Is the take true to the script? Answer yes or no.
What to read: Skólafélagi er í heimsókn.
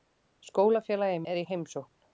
yes